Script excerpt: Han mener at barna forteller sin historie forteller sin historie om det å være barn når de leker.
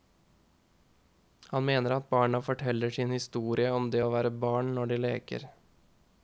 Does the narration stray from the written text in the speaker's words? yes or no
yes